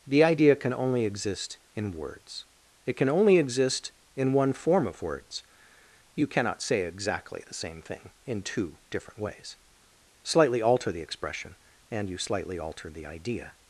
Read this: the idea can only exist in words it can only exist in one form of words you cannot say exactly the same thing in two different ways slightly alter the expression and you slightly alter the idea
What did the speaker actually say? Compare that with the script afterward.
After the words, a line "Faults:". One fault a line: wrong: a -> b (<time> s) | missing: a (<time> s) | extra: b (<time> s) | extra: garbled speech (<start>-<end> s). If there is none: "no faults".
the idea can only exist in words it can only exist in one form of words you cannot say exactly the same thing in two different ways slightly alter the expression and you slightly alter the idea
Faults:
no faults